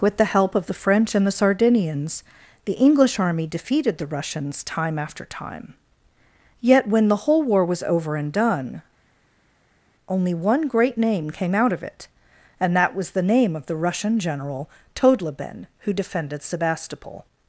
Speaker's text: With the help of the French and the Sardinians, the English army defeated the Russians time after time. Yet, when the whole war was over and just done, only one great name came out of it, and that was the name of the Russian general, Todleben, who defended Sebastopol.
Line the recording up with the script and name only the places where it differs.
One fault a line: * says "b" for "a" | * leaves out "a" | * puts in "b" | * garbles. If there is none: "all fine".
* leaves out "just"